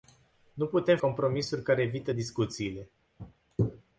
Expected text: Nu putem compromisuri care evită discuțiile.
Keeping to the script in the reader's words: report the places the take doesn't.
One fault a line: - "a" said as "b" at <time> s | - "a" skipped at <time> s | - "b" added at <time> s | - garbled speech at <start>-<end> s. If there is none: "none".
none